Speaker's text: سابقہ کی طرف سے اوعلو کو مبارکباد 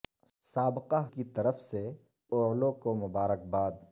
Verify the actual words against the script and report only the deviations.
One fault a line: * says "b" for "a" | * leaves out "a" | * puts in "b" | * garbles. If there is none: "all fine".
all fine